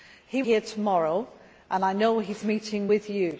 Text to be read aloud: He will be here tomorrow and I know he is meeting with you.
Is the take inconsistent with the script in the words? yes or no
yes